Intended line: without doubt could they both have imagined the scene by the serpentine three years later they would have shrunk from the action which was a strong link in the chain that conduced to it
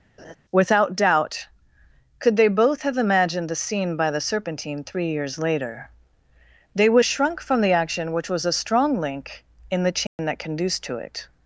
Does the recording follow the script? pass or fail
fail